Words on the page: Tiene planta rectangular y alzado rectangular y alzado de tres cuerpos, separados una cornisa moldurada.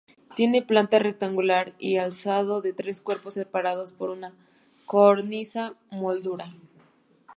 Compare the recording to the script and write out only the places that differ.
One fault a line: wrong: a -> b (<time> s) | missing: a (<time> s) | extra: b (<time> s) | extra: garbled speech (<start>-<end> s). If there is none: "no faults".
missing: rectangular y alzado (2.6 s)
extra: por (3.9 s)